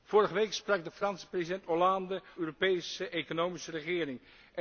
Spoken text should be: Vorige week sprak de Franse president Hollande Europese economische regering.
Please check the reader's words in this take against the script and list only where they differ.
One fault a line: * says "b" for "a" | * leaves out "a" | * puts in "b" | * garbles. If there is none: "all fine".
all fine